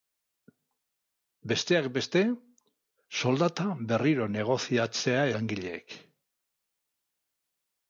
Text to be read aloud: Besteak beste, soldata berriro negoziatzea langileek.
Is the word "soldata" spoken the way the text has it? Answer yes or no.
yes